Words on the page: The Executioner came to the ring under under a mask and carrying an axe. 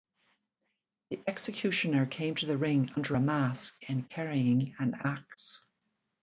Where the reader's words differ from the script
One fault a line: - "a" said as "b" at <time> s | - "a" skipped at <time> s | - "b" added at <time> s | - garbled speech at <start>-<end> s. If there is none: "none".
- "under" skipped at 3.2 s